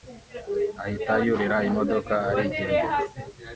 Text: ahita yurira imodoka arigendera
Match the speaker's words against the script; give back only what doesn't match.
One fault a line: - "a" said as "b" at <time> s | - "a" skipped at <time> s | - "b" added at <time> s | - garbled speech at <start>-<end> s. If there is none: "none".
none